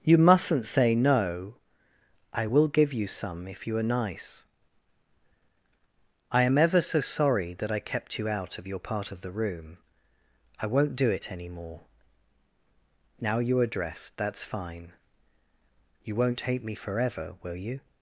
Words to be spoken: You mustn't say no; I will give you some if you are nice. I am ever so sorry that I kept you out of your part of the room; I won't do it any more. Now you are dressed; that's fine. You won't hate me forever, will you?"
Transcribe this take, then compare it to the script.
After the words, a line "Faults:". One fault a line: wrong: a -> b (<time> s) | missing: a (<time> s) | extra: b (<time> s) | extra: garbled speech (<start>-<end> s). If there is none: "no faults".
You mustn't say no; I will give you some if you are nice. I am ever so sorry that I kept you out of your part of the room; I won't do it any more. Now you are dressed; that's fine. You won't hate me forever, will you?"
Faults:
no faults